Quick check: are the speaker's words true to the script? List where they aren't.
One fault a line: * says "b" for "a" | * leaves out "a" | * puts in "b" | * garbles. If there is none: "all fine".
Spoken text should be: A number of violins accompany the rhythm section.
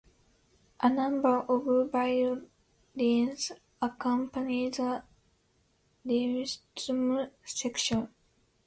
all fine